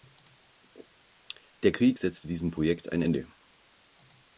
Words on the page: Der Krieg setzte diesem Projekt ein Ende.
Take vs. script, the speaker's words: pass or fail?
pass